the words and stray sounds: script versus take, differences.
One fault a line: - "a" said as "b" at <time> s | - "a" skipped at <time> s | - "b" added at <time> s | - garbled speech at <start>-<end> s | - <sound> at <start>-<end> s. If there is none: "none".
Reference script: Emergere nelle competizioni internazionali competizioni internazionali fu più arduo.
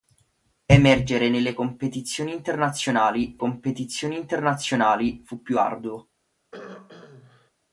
- throat clearing at 6.5-7.5 s